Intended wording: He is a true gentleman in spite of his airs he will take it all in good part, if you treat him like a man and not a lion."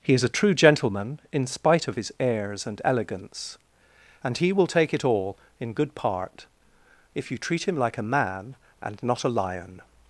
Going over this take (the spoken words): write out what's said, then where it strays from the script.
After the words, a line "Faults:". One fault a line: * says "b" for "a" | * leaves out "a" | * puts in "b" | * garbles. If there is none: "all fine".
He is a true gentleman in spite of his airs and elegance, and he will take it all in good part, if you treat him like a man and not a lion."
Faults:
* puts in "and elegance and"